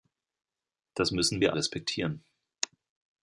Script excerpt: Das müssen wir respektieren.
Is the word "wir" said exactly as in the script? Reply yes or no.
yes